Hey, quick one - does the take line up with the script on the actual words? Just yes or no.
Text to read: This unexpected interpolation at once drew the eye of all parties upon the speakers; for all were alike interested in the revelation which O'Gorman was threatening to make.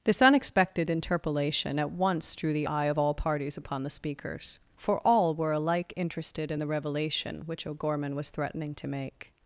yes